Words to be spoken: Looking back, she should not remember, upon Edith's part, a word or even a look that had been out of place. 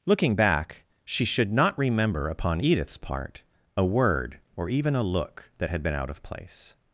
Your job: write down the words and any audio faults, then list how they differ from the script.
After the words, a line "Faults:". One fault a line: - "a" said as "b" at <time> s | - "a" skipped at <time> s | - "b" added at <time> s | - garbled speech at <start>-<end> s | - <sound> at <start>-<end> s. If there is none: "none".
Looking back, she should not remember, upon Edith's part, a word or even a look that had been out of place.
Faults:
none